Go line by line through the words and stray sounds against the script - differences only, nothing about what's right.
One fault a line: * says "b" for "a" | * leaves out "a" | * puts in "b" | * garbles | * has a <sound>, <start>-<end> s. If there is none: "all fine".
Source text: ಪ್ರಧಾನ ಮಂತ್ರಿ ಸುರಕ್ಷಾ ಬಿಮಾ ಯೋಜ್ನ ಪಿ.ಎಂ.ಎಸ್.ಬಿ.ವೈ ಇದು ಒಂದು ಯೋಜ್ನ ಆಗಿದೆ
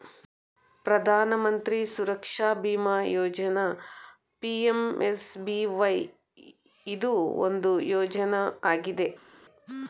all fine